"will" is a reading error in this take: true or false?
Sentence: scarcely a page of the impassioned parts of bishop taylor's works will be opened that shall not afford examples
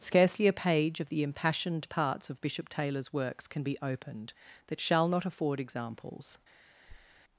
true